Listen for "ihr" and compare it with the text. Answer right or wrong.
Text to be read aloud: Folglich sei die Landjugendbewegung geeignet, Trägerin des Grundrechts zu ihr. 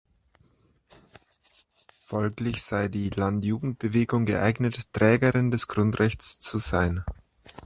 wrong